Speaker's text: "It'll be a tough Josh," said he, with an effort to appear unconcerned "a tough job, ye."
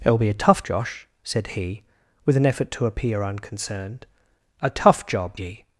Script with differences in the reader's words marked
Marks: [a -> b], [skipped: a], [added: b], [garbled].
"It'll be a tough Josh," said he, with an effort to appear unconcerned "a tough job, ye."